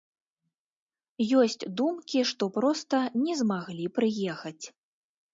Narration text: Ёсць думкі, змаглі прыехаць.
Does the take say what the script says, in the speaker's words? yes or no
no